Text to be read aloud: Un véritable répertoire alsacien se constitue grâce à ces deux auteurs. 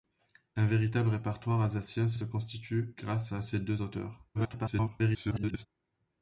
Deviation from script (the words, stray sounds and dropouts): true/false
true